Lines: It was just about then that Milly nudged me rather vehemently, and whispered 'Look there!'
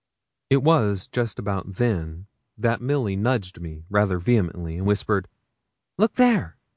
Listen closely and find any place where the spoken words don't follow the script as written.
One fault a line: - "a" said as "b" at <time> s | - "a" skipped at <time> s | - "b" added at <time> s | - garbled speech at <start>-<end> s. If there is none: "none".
none